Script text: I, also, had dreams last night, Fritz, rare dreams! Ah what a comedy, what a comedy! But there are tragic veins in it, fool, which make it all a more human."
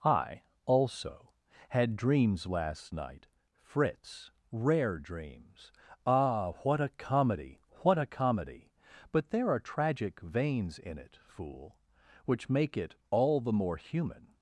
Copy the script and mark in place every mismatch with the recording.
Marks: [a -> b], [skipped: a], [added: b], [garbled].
I, also, had dreams last night, Fritz, rare dreams! Ah what a comedy, what a comedy! But there are tragic veins in it, fool, which make it all [a -> the] more human."